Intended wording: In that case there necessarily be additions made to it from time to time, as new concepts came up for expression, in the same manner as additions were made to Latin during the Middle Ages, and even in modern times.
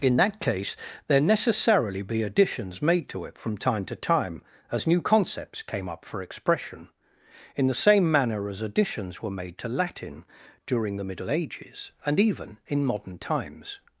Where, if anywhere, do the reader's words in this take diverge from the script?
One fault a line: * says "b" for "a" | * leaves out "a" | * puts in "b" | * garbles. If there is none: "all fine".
all fine